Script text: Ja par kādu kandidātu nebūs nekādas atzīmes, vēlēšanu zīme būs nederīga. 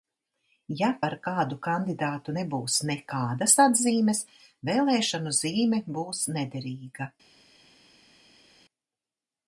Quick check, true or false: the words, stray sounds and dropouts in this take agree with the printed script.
true